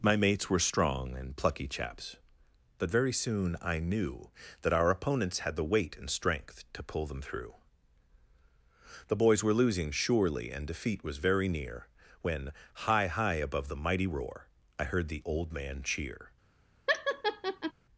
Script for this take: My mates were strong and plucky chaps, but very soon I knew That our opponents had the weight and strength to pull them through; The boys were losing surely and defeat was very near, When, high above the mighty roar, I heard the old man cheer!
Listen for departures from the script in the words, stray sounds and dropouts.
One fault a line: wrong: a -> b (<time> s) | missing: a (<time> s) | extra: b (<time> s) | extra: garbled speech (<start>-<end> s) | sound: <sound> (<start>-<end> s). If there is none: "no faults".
extra: high (13.1 s)
sound: laugh (16.9-17.7 s)